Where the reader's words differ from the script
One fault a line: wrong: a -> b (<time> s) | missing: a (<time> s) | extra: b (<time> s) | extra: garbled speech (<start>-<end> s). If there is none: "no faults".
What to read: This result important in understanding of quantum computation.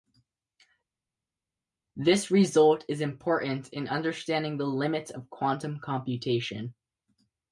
extra: is (2.9 s)
extra: the limits (4.6 s)